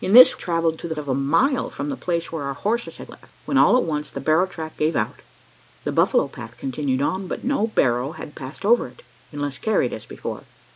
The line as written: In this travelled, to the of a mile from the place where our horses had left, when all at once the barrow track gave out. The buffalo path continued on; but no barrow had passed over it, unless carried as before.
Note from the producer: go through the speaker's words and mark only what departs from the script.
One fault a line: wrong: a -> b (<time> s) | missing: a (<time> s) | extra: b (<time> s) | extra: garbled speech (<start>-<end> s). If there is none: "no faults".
no faults